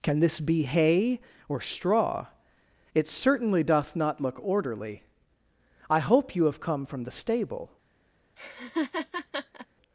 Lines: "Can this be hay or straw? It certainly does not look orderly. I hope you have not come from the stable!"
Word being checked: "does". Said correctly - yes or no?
no